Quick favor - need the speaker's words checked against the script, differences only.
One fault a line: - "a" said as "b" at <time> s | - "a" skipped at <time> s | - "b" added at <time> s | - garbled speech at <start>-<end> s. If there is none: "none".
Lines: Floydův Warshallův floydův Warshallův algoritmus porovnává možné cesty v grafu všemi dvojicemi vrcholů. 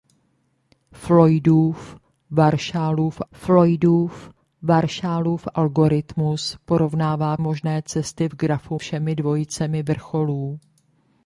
none